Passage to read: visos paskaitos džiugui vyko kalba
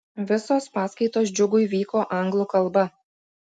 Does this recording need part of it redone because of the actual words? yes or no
yes